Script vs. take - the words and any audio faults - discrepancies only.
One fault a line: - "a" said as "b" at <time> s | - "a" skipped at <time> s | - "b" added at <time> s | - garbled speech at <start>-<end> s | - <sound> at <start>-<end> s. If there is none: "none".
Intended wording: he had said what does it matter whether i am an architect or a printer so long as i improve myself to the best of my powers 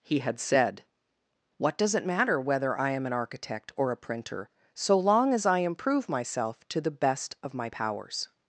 none